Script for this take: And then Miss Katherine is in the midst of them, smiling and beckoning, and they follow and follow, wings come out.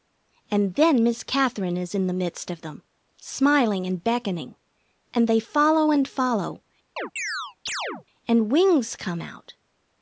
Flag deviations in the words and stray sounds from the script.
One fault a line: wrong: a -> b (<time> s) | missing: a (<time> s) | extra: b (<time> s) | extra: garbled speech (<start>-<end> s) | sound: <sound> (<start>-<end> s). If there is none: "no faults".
sound: chirp (7.0-8.1 s)
extra: and (8.3 s)